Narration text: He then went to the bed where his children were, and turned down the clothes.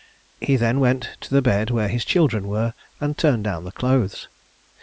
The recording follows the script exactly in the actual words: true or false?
true